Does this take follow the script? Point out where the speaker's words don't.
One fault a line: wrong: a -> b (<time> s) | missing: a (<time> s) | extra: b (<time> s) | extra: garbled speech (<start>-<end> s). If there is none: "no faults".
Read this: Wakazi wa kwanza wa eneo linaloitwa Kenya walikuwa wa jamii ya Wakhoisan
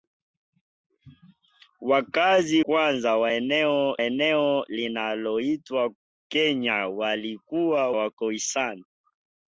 missing: wa (2.6 s)
extra: eneo (4.0 s)
missing: wa jamii ya (7.9 s)